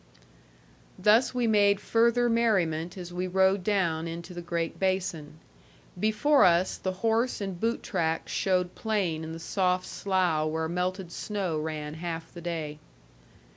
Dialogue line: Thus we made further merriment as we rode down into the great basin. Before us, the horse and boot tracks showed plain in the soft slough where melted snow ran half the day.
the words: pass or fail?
pass